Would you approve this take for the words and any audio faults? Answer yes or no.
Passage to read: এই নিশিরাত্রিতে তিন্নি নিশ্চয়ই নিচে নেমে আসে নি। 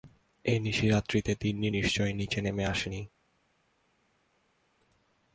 yes